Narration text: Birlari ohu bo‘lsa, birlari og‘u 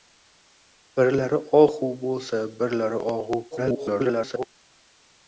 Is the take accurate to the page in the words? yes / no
no